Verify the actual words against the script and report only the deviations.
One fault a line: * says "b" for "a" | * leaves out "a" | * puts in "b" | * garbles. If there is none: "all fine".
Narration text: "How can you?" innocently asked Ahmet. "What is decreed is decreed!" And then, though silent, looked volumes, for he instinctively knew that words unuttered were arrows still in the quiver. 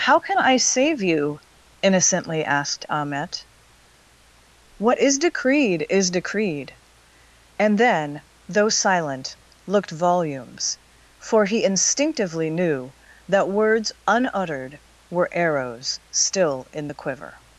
* puts in "I save"